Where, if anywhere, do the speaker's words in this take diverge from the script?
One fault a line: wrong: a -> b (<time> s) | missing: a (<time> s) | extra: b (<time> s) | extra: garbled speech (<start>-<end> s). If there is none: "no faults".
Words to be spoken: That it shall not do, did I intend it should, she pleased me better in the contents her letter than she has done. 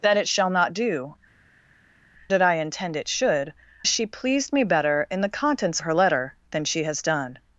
no faults